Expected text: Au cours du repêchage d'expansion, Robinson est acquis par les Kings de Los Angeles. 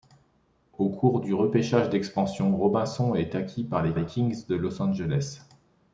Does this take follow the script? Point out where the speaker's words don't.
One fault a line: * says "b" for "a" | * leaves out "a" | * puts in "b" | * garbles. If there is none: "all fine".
* puts in "les"